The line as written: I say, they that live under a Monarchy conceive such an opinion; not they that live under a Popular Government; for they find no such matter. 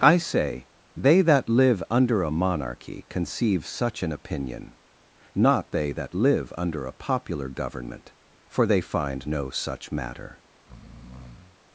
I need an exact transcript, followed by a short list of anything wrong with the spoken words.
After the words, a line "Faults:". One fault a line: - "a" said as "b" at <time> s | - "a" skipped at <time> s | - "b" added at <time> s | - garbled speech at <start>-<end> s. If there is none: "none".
I say, they that live under a Monarchy conceive such an opinion; not they that live under a Popular Government; for they find no such matter.
Faults:
none